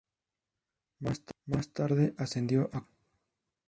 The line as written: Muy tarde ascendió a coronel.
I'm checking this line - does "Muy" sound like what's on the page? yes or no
no